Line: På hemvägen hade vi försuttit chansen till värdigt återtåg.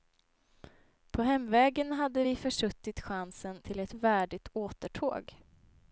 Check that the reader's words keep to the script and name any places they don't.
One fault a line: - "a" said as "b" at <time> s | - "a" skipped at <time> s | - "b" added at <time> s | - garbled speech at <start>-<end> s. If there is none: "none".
- "ett" added at 3.8 s